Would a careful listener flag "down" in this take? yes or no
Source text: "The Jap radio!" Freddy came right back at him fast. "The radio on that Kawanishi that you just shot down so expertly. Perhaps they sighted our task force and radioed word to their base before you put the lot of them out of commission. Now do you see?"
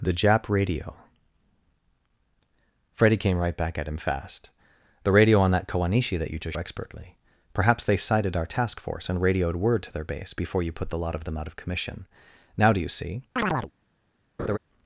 yes